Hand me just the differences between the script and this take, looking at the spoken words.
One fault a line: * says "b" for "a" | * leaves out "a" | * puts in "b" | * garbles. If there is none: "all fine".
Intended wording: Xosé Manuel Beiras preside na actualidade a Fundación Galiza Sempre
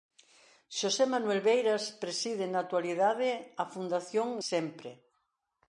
* leaves out "Galiza"